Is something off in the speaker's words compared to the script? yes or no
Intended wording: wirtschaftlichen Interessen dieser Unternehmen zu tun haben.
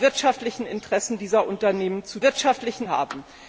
yes